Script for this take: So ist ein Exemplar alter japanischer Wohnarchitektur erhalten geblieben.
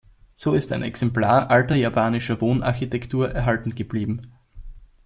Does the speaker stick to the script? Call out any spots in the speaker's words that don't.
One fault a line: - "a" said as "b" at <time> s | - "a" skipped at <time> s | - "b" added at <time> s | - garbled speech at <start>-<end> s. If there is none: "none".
none